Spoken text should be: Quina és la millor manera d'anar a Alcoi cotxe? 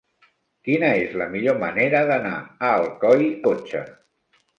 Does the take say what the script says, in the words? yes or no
yes